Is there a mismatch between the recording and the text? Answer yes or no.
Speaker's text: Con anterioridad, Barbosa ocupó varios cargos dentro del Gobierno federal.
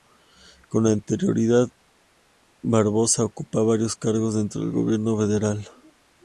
no